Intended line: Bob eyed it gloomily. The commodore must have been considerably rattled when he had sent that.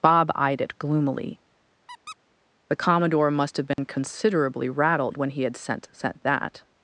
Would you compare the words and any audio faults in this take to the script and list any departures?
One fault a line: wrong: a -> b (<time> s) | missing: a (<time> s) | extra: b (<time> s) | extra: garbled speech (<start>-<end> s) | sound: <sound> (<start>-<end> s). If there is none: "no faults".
sound: squeak (1.9-2.2 s)
sound: dropout (3.7-3.8 s)
extra: sent (5.9 s)